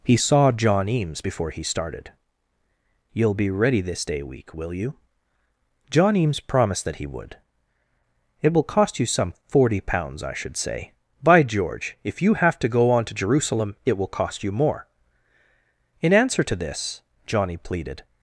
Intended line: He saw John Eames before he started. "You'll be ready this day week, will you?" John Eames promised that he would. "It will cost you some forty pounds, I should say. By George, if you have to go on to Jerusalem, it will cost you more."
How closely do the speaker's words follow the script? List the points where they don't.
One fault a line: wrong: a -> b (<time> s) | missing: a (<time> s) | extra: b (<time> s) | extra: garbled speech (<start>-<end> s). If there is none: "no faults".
extra: In answer to this Johnny pleaded (16.0 s)